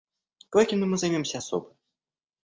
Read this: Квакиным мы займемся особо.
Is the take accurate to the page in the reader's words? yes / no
yes